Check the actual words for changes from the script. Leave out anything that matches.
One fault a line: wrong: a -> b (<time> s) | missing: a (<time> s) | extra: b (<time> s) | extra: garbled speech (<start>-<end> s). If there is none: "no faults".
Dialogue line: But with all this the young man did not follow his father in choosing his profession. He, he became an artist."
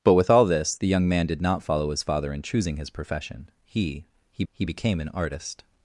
extra: he (4.5 s)